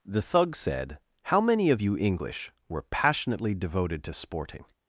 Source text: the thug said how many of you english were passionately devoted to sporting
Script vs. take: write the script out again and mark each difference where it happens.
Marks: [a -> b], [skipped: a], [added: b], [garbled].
the thug said how many of you english were passionately devoted to sporting